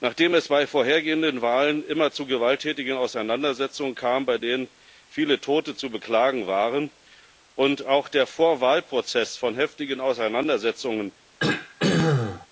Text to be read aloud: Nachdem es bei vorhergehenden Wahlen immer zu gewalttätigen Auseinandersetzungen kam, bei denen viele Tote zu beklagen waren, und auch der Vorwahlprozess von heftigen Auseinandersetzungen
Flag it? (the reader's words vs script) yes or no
no